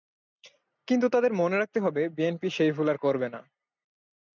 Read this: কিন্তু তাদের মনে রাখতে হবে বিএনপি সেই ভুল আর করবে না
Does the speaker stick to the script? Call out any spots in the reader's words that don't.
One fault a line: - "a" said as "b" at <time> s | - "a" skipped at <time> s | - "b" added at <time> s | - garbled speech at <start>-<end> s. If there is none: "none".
none